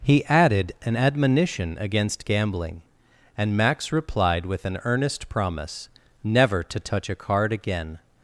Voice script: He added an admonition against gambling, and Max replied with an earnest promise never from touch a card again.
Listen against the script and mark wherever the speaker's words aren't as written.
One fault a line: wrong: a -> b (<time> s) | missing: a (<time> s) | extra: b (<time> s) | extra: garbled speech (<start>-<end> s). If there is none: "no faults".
wrong: from -> to (6.6 s)